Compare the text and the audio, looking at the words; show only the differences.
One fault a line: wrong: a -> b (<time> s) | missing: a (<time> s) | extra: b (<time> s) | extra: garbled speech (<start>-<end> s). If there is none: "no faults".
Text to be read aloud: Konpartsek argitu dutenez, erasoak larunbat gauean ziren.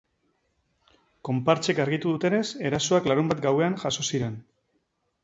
extra: jazo (3.8 s)